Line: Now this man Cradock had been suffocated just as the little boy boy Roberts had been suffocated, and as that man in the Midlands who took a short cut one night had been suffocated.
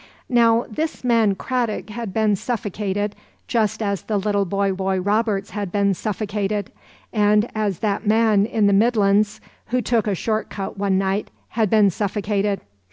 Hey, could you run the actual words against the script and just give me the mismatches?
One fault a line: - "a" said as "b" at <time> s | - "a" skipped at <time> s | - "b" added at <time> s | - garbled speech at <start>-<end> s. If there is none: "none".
none